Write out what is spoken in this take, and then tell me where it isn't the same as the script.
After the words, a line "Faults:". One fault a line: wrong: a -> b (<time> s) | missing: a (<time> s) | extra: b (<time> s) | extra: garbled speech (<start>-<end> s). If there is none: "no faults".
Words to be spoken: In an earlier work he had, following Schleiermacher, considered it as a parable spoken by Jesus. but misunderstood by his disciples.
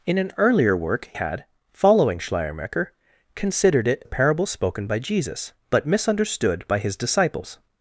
In an earlier work had, following Schleiermacher, considered it a parable spoken by Jesus. but misunderstood by his disciples.
Faults:
missing: he (1.1 s)
missing: as (4.0 s)